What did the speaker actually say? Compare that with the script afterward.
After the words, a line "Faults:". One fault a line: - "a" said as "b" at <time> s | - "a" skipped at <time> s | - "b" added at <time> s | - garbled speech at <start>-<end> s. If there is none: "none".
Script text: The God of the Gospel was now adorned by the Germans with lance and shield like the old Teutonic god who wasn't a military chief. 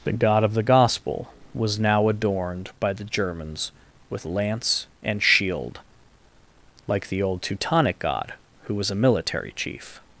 The God of the Gospel was now adorned by the Germans with lance and shield like the old Teutonic god who was a military chief.
Faults:
- "wasn't" said as "was" at 8.7 s